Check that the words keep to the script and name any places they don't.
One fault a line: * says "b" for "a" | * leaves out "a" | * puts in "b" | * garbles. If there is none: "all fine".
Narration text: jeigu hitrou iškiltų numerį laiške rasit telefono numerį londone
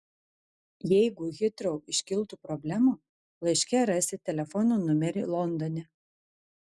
* says "problemų" for "numerį"